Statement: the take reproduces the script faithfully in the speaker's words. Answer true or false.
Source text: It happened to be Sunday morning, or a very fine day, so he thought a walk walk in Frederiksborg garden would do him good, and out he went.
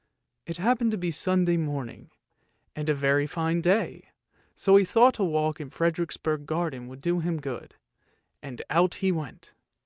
false